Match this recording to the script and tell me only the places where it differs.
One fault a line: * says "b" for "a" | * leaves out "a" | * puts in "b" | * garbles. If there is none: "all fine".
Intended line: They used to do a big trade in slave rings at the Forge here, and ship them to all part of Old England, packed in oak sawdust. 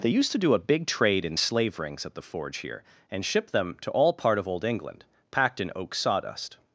all fine